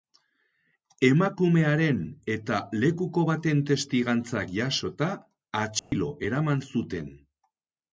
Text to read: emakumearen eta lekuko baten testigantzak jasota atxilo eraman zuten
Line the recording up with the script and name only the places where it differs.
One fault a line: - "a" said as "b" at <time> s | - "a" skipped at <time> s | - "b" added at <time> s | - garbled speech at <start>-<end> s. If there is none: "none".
none